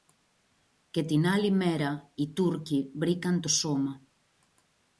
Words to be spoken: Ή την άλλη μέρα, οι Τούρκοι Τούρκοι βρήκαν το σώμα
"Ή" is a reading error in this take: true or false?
true